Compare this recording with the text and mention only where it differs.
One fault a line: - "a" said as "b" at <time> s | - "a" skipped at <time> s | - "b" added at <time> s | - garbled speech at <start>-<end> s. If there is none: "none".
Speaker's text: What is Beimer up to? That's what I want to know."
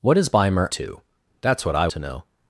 - "up" skipped at 0.7 s
- "want" skipped at 1.9 s